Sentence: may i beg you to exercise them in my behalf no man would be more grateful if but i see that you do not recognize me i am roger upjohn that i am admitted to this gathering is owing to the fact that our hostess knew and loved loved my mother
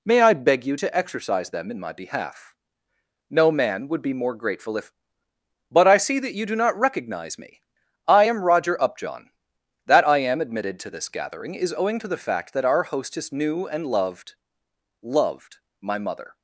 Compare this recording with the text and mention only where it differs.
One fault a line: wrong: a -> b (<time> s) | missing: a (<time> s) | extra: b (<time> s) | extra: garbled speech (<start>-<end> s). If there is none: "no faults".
no faults